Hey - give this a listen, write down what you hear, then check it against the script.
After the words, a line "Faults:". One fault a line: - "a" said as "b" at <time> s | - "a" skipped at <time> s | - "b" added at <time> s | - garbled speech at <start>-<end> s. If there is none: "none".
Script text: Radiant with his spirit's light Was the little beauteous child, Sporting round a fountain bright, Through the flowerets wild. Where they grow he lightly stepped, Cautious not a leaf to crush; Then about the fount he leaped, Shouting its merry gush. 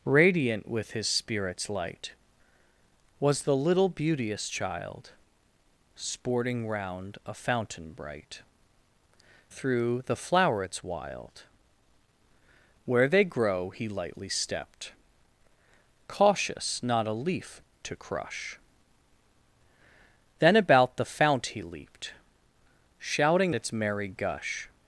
Radiant with his spirit's light Was the little beauteous child, Sporting round a fountain bright, Through the flowerets wild. Where they grow he lightly stepped, Cautious not a leaf to crush; Then about the fount he leaped, Shouting its merry gush.
Faults:
none